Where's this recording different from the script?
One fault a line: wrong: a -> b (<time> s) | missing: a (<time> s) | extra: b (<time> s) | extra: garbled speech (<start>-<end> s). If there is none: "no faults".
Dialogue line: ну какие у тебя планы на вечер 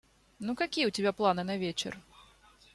no faults